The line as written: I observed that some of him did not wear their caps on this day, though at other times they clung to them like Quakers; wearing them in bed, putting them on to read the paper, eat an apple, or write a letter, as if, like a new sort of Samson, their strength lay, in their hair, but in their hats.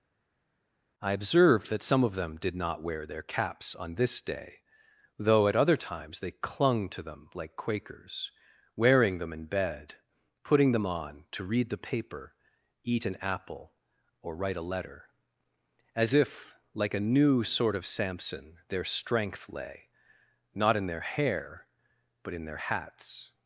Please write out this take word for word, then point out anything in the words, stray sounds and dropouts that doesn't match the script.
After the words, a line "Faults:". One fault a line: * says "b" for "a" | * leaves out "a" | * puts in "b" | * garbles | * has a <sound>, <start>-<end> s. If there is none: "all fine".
I observed that some of them did not wear their caps on this day, though at other times they clung to them like Quakers; wearing them in bed, putting them on to read the paper, eat an apple, or write a letter, as if, like a new sort of Samson, their strength lay, not in their hair, but in their hats.
Faults:
* says "them" for "him"
* puts in "not"